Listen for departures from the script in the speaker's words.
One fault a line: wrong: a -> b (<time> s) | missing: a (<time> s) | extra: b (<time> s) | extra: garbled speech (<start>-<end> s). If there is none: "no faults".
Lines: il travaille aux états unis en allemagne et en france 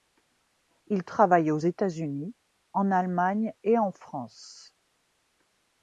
no faults